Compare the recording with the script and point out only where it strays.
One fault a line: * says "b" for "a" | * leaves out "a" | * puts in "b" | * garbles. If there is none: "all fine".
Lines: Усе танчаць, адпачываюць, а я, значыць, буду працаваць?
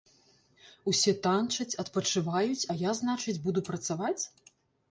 all fine